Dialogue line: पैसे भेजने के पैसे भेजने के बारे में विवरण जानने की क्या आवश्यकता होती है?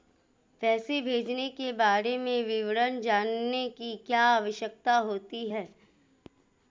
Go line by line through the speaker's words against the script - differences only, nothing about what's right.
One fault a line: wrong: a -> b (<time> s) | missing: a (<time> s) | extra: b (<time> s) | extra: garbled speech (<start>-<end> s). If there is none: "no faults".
missing: पैसे भेजने के (1.7 s)